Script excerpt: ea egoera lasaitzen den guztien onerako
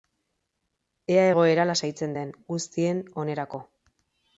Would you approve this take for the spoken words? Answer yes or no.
yes